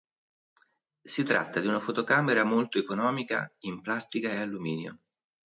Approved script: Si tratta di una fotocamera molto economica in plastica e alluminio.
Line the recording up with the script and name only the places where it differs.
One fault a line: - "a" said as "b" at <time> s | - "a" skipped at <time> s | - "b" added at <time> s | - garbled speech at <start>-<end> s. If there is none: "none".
none